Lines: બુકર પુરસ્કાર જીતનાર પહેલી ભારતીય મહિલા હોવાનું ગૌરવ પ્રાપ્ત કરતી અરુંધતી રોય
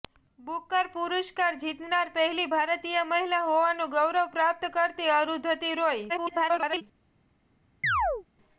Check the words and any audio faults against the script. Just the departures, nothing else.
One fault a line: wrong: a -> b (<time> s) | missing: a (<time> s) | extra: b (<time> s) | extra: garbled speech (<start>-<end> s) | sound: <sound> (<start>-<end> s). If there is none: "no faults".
extra: garbled speech (6.1-6.8 s)
sound: chirp (7.8-8.2 s)